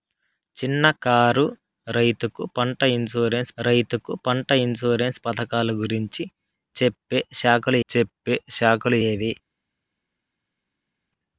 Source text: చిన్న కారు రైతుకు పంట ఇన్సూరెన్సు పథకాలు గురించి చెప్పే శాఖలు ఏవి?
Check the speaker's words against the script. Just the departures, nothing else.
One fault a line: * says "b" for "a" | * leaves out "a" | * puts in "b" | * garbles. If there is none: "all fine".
* puts in "రైతుకు పంట ఇన్సూరెన్సు"
* puts in "చెప్పే శాఖలు"